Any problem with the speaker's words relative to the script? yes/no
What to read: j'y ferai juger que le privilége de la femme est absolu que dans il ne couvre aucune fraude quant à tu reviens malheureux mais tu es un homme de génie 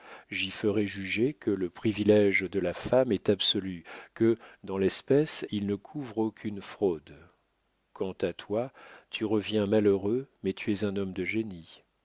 yes